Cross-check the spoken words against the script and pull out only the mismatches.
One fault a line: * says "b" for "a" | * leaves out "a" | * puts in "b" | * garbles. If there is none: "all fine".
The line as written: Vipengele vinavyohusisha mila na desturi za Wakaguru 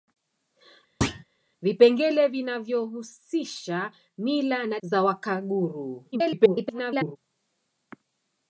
* leaves out "desturi"
* garbles